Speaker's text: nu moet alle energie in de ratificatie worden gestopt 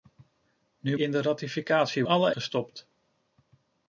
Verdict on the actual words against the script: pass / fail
fail